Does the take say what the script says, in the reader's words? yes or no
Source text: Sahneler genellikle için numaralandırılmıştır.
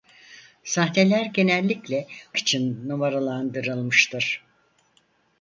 yes